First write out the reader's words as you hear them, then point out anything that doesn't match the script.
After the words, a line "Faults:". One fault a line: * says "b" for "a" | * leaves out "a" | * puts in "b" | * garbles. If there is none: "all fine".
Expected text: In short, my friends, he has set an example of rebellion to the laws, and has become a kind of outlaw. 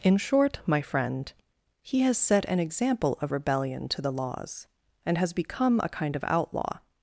In short, my friend, he has set an example of rebellion to the laws, and has become a kind of outlaw.
Faults:
* says "friend" for "friends"